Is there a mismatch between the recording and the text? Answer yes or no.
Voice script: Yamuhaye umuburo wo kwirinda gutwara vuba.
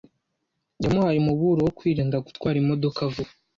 yes